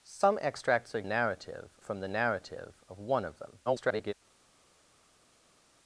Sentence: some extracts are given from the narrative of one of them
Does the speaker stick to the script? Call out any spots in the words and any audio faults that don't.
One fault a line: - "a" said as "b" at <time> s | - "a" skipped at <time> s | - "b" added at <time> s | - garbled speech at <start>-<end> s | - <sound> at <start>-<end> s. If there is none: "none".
- "given" said as "narrative" at 1.0 s
- garbled speech at 3.7-4.1 s